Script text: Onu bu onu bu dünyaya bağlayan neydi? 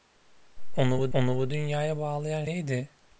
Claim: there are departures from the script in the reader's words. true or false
false